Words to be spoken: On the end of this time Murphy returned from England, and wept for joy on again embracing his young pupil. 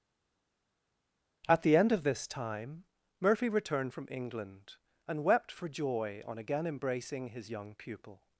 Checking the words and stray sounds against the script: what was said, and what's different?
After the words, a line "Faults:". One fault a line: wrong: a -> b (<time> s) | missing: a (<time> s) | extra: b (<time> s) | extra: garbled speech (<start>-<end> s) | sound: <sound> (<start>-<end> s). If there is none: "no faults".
At the end of this time Murphy returned from England, and wept for joy on again embracing his young pupil.
Faults:
wrong: On -> At (1.5 s)